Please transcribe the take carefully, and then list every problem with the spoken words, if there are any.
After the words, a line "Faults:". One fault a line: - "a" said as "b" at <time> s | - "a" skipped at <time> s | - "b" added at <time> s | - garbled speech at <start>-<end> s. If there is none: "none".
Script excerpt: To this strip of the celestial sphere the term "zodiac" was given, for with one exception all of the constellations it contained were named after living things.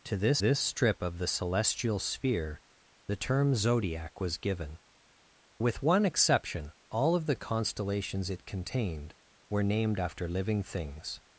To this this strip of the celestial sphere the term "zodiac" was given, with one exception all of the constellations it contained were named after living things.
Faults:
- "this" added at 0.4 s
- "for" skipped at 4.8 s